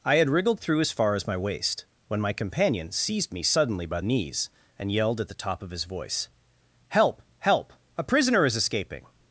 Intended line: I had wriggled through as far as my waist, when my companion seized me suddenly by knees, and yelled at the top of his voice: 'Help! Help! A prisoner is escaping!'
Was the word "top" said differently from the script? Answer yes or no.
no